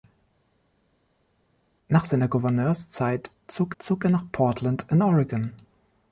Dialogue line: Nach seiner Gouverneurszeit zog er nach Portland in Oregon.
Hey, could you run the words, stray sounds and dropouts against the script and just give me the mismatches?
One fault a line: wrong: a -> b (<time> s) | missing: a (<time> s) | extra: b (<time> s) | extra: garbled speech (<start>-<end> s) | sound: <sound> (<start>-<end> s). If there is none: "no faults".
extra: zog (3.8 s)